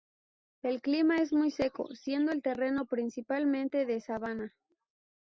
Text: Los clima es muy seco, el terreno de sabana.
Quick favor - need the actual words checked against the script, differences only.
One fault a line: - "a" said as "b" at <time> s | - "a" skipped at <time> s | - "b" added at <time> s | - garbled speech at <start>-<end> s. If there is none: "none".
- "Los" said as "El" at 0.6 s
- "siendo" added at 1.9 s
- "principalmente" added at 2.9 s